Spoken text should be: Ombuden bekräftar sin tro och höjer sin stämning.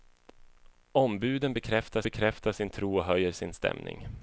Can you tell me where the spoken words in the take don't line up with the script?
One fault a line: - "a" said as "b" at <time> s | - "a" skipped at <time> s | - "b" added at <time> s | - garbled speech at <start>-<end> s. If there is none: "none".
- "bekräftar" added at 2.0 s